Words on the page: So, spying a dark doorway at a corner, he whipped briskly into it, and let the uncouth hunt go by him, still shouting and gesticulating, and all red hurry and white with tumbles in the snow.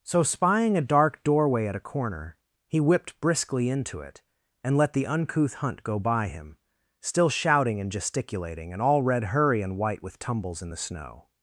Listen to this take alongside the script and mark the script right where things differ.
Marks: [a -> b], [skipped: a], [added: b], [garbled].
So, spying a dark doorway at a corner, he whipped briskly into it, and let the uncouth hunt go by him, still shouting and gesticulating, and all red hurry and white with tumbles in the snow.